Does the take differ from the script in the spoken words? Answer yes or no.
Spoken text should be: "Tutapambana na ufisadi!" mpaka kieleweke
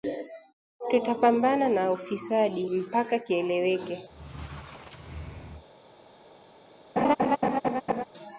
no